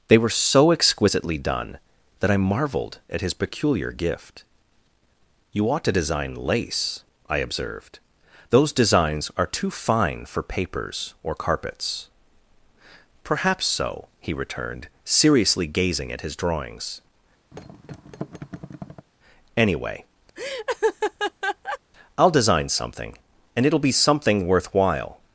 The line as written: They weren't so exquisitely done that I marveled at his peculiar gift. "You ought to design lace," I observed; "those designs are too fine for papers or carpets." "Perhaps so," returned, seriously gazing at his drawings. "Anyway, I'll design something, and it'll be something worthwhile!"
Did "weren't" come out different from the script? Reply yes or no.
yes